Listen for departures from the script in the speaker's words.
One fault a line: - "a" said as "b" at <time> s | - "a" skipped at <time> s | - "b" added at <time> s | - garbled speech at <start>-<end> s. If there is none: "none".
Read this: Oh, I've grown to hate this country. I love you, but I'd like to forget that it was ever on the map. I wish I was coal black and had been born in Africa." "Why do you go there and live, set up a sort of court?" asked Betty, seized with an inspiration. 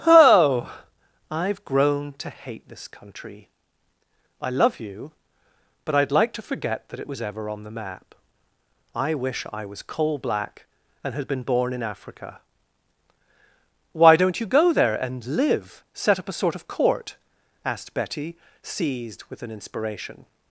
- "do" said as "don't" at 14.2 s